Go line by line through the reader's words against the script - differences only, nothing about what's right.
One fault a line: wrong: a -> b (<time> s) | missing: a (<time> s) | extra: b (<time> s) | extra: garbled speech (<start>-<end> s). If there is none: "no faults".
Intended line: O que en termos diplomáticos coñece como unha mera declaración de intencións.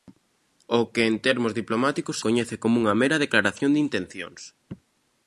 no faults